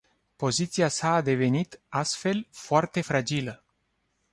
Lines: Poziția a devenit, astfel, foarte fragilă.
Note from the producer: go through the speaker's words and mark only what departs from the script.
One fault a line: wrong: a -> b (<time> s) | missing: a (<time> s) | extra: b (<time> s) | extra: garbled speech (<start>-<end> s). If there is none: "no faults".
extra: sa (0.9 s)